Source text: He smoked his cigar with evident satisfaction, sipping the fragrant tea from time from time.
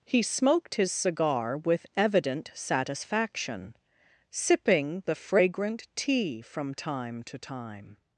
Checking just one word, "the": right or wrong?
right